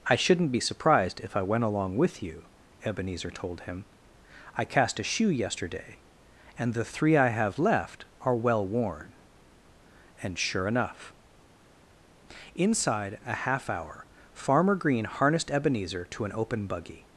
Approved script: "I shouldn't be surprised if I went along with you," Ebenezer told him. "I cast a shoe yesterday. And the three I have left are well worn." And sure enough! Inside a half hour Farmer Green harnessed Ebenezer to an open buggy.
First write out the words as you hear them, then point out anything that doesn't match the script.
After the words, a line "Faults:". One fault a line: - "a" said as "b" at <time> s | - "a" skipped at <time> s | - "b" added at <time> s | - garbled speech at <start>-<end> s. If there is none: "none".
"I shouldn't be surprised if I went along with you," Ebenezer told him. "I cast a shoe yesterday. And the three I have left are well worn." And sure enough! Inside a half hour Farmer Green harnessed Ebenezer to an open buggy.
Faults:
none